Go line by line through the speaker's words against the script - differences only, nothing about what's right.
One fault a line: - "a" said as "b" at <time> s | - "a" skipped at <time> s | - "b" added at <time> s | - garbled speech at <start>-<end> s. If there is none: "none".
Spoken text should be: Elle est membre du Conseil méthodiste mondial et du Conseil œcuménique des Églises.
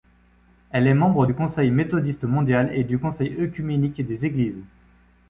none